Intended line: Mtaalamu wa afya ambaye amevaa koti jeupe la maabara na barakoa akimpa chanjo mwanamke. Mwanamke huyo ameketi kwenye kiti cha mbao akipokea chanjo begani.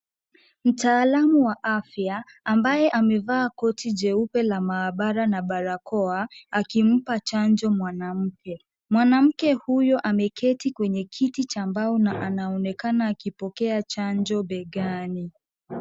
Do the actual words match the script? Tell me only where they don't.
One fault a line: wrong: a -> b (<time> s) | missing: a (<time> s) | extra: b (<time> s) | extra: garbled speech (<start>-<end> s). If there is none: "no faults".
extra: na anaonekana (12.0 s)